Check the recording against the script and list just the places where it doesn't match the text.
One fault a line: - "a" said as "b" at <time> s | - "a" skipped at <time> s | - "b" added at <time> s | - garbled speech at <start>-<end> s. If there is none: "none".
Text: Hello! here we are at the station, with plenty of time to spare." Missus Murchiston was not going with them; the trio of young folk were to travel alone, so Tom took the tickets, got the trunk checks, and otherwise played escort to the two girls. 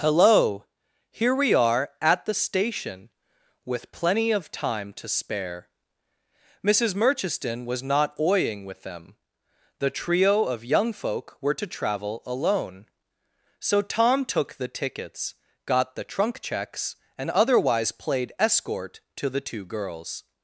- "going" said as "oying" at 8.2 s